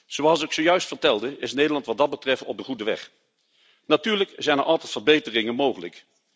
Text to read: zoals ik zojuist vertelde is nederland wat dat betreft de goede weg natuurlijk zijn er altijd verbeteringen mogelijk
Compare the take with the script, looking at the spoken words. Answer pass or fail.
fail